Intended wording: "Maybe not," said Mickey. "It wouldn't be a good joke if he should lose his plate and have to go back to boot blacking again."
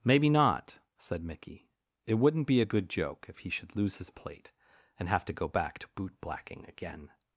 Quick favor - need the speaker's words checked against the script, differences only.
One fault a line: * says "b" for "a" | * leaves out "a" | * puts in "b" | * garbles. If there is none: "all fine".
all fine